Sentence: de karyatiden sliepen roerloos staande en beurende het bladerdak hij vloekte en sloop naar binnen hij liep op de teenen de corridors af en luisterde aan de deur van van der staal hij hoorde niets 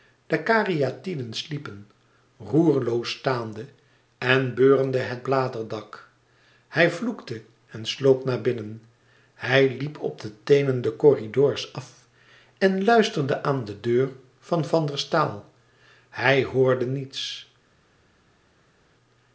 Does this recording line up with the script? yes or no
yes